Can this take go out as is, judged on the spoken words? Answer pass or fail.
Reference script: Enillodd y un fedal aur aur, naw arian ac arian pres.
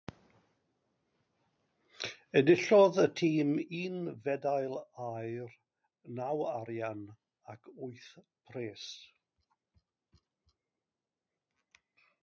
fail